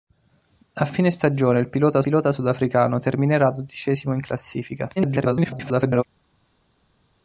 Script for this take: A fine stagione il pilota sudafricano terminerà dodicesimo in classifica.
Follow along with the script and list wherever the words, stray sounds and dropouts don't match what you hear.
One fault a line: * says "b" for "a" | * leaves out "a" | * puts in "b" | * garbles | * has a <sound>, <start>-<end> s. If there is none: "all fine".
* puts in "pilota"
* garbles